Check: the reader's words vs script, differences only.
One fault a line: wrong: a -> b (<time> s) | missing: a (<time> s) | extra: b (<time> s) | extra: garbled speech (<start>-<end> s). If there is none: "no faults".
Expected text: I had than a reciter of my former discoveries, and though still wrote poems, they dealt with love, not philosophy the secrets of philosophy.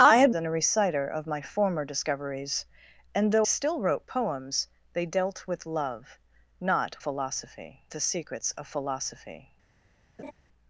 no faults